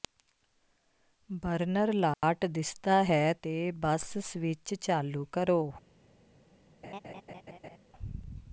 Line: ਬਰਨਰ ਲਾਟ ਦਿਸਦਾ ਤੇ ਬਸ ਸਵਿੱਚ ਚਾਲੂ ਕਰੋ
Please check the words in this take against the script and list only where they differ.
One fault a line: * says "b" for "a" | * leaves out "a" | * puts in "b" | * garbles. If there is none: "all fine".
* puts in "ਹੈ"